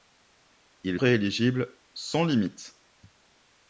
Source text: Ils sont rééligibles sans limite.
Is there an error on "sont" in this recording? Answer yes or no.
yes